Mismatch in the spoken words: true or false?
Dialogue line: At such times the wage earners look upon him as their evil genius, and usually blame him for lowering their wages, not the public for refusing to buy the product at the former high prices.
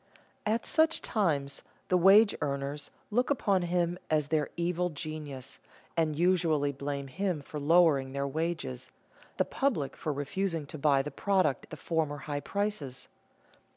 true